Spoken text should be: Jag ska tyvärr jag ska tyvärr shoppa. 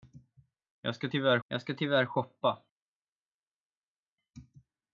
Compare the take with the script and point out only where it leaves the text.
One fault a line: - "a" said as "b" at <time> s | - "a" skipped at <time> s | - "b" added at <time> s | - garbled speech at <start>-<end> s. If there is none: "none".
none